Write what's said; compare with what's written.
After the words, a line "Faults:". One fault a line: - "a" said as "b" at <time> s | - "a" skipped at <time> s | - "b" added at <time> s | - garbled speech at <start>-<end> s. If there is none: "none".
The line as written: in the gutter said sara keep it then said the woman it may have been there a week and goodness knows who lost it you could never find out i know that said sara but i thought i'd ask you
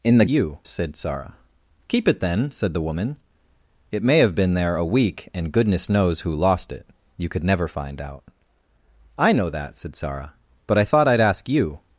in the you said sara keep it then said the woman it may have been there a week and goodness knows who lost it you could never find out i know that said sara but i thought i'd ask you
Faults:
- "gutter" said as "you" at 0.3 s